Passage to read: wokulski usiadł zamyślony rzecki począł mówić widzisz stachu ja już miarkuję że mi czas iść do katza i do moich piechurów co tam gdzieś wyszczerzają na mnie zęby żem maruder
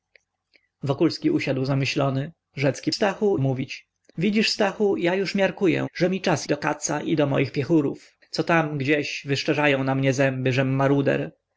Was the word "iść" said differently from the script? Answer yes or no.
yes